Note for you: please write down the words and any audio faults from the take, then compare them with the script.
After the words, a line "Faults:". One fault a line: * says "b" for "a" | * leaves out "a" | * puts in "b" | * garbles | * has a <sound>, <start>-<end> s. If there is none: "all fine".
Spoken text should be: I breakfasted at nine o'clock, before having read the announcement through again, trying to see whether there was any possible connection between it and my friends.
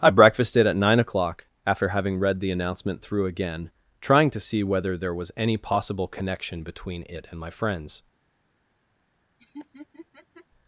I breakfasted at nine o'clock, after having read the announcement through again, trying to see whether there was any possible connection between it and my friends.
Faults:
* says "after" for "before"
* has a laugh, 9.4-10.5 s